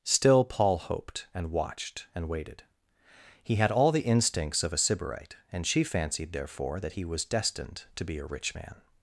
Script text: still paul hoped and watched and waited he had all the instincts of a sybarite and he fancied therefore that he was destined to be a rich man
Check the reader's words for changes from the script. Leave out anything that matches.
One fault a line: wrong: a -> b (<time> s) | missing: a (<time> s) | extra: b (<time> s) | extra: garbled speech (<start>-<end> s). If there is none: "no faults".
wrong: he -> she (5.7 s)